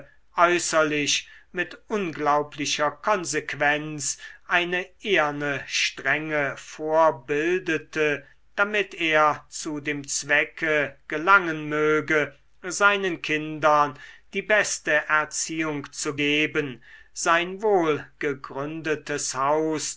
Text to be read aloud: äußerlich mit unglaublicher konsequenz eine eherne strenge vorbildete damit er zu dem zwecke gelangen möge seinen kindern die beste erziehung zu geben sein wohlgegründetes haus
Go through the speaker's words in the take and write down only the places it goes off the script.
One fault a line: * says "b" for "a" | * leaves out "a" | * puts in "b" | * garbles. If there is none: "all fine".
all fine